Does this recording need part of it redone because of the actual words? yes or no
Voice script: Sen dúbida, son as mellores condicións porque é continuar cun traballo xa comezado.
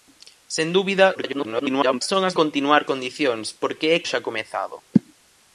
yes